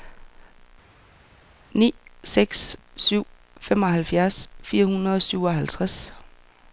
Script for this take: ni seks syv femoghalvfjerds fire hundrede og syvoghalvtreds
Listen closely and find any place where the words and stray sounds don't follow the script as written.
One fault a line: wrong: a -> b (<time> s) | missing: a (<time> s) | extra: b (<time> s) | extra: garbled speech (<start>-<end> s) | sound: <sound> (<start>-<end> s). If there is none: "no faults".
no faults